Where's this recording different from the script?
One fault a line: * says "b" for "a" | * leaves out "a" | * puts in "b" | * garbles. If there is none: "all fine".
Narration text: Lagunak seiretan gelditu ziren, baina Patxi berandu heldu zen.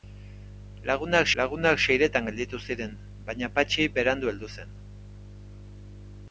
* puts in "lagunak"